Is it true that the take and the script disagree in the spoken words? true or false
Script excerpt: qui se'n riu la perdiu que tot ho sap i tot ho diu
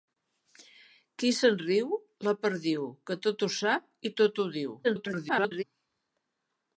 true